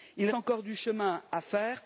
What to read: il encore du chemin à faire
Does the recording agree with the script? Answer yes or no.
yes